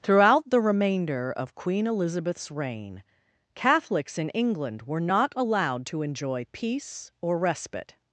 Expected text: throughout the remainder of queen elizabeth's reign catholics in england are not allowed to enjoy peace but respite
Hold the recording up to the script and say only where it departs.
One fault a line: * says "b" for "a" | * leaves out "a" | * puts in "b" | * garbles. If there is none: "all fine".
* says "were" for "are"
* says "or" for "but"